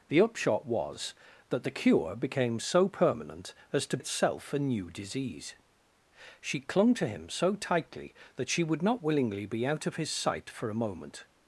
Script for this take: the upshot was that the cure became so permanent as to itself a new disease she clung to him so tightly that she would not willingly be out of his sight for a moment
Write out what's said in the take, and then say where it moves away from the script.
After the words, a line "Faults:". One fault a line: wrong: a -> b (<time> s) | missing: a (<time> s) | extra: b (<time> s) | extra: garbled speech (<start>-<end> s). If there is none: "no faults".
the upshot was that the cure became so permanent as to itself a new disease she clung to him so tightly that she would not willingly be out of his sight for a moment
Faults:
no faults